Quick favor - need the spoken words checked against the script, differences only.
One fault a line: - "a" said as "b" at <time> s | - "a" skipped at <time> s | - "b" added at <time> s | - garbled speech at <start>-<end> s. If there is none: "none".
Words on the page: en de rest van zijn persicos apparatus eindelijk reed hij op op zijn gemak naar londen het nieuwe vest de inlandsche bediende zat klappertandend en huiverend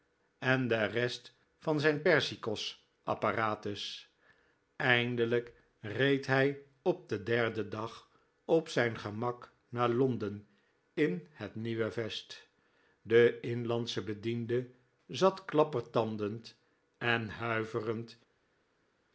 - "den derden dag" added at 7.1 s
- "in" added at 10.9 s